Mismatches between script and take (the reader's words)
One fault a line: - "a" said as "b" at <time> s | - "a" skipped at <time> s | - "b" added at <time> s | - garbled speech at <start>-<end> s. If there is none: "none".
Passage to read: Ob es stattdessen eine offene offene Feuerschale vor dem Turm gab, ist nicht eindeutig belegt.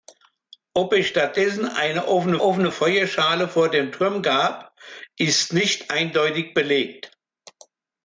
none